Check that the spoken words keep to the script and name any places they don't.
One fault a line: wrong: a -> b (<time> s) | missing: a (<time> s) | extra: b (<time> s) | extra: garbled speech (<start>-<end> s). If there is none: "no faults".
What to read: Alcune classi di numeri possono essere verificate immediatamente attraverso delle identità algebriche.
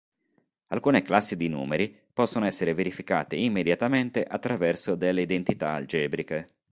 no faults